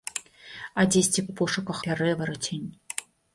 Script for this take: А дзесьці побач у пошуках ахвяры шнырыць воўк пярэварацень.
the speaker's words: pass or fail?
fail